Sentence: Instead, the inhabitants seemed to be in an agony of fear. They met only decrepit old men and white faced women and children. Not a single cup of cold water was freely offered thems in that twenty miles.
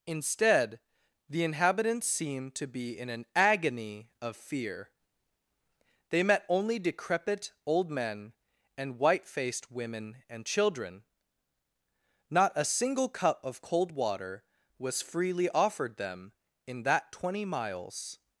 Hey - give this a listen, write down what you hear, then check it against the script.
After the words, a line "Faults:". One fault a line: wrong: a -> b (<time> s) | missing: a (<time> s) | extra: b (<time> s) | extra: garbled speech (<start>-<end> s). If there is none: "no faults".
Instead, the inhabitants seemed to be in an agony of fear. They met only decrepit old men and white faced women and children. Not a single cup of cold water was freely offered them in that twenty miles.
Faults:
wrong: thems -> them (16.0 s)